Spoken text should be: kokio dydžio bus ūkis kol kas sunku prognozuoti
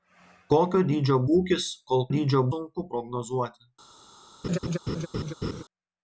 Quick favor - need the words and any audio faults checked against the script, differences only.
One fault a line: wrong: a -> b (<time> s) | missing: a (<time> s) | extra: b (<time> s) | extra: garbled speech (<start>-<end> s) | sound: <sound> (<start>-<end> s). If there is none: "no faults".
missing: bus (1.2 s)
wrong: kas -> dydžio (2.2 s)
sound: laugh (4.4-5.6 s)